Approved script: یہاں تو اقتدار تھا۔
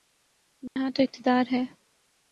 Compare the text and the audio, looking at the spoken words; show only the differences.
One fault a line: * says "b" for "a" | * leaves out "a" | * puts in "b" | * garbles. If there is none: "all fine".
* says "ہے" for "تھا"